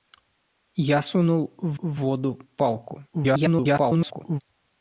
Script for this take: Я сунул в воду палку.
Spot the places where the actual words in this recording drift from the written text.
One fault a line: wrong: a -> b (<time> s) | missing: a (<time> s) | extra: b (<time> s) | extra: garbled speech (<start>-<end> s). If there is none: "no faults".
extra: в (1.8 s)
extra: garbled speech (3.1-4.4 s)